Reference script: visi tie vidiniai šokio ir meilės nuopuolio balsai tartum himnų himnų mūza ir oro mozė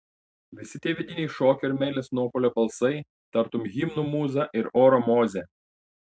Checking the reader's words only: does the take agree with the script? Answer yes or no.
no